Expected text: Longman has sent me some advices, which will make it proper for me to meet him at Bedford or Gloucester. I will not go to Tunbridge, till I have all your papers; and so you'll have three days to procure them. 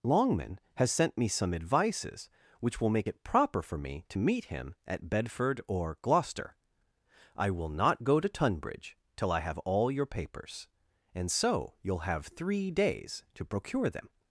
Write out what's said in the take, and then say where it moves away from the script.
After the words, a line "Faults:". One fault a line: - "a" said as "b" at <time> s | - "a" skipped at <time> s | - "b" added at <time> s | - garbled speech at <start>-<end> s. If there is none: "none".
Longman has sent me some advices, which will make it proper for me to meet him at Bedford or Gloucester. I will not go to Tunbridge, till I have all your papers; and so you'll have three days to procure them.
Faults:
none